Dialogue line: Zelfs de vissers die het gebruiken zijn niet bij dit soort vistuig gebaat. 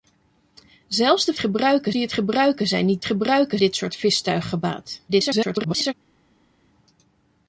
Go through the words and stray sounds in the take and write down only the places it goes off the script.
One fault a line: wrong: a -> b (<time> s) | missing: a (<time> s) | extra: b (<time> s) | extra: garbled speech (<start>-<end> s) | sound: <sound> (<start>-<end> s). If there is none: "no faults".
wrong: vissers -> gebruiken (1.4 s)
wrong: bij -> gebruiken (3.0 s)
extra: garbled speech (5.1-5.9 s)